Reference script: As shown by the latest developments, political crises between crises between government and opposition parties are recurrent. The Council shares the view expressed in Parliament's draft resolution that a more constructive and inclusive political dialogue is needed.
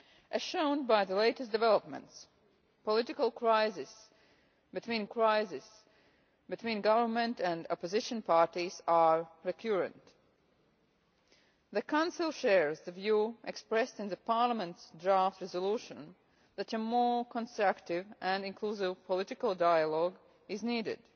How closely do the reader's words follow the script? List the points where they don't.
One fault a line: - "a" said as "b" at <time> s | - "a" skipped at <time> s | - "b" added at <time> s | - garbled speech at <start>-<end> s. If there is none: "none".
none